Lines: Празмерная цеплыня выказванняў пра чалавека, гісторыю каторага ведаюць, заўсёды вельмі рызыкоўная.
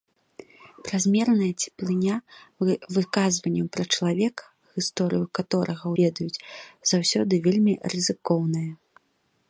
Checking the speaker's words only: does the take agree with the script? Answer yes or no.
yes